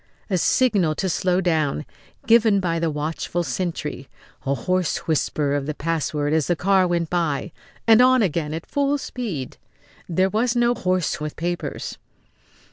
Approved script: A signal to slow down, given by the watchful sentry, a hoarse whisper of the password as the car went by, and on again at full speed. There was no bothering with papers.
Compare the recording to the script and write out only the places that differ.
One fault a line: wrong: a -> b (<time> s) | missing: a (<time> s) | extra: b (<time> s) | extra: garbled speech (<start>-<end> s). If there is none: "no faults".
wrong: bothering -> hoarse (10.7 s)